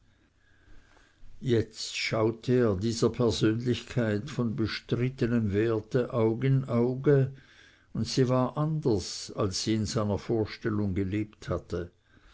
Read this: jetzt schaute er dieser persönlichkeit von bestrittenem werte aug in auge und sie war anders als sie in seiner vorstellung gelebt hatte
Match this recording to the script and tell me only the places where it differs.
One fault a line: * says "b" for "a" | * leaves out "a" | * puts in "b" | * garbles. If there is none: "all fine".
all fine